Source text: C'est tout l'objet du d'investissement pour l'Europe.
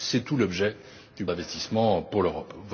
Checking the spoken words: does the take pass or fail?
pass